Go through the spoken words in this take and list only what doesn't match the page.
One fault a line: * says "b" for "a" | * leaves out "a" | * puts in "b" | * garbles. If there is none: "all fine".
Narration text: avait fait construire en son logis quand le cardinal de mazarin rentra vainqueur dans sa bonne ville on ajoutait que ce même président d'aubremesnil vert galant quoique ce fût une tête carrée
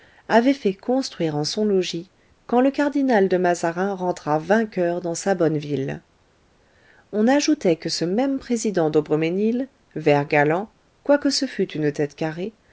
all fine